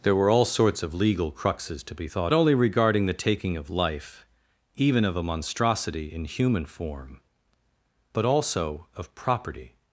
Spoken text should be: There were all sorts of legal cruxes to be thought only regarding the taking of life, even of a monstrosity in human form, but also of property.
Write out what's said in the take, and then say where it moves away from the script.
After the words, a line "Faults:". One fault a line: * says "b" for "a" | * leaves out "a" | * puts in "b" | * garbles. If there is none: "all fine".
There were all sorts of legal cruxes to be thought only regarding the taking of life, even of a monstrosity in human form, but also of property.
Faults:
all fine